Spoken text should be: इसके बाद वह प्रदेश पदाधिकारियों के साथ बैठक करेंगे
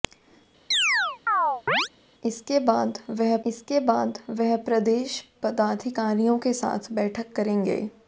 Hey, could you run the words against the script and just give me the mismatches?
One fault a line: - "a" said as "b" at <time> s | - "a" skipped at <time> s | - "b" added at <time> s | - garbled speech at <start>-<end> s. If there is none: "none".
- "इसके बाद वह" added at 3.4 s